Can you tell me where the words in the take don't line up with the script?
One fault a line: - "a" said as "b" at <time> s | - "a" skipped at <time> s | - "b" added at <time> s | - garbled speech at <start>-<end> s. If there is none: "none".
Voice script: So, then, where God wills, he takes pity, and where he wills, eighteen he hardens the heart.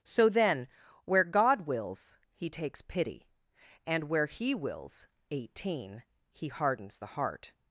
none